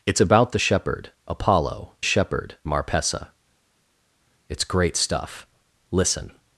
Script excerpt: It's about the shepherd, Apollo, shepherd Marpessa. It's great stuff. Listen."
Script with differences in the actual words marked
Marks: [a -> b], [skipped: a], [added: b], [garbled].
It's about the shepherd, Apollo, shepherd Marpessa. It's great stuff. Listen."